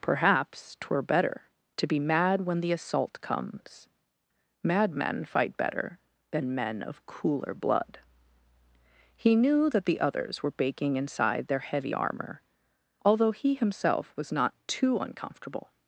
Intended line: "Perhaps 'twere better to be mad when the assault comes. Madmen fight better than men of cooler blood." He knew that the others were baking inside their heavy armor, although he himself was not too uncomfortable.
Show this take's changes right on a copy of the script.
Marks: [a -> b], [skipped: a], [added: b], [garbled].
"Perhaps 'twere better to be mad when the assault comes. Madmen fight better than men of cooler blood." He knew that the others were baking inside their heavy armor, although he himself was not too uncomfortable.